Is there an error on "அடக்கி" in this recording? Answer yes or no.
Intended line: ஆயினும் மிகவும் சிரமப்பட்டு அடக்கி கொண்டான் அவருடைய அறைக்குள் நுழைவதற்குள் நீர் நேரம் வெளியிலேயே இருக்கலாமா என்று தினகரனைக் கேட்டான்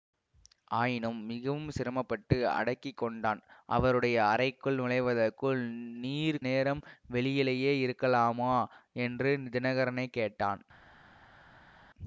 no